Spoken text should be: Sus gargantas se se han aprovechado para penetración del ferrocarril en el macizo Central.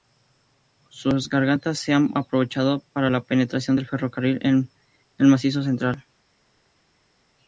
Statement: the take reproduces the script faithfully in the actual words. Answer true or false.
false